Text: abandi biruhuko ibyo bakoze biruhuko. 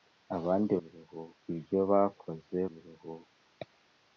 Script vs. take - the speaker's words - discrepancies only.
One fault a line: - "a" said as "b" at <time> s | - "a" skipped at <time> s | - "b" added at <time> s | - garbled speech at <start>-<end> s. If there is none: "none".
none